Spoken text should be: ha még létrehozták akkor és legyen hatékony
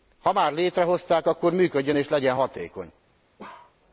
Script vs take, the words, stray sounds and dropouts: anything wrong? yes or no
yes